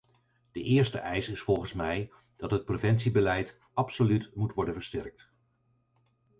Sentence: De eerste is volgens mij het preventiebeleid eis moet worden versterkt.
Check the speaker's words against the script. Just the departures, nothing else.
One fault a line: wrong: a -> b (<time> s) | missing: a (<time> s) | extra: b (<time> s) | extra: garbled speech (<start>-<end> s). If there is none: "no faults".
extra: eis (1.0 s)
extra: dat (2.4 s)
wrong: eis -> absoluut (3.7 s)